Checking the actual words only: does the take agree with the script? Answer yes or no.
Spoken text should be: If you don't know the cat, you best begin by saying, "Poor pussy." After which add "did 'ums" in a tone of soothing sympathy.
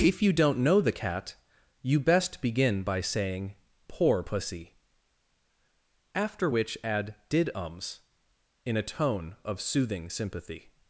yes